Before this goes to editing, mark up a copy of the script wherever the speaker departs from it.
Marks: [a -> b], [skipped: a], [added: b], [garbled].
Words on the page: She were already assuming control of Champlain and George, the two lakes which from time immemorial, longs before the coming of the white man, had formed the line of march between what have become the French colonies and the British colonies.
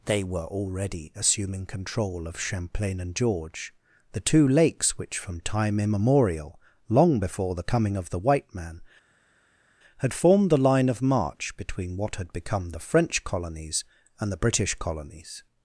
[She -> They] were already assuming control of Champlain and George, the two lakes which from time immemorial, [longs -> long] before the coming of the white man, had formed the line of march between what [have -> had] become the French colonies and the British colonies.